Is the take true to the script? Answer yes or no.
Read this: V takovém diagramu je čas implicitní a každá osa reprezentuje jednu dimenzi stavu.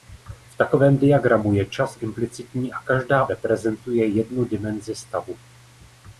no